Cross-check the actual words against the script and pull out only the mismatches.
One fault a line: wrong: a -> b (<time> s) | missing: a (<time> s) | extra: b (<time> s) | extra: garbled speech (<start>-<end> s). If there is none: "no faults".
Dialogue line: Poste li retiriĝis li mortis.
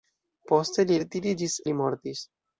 no faults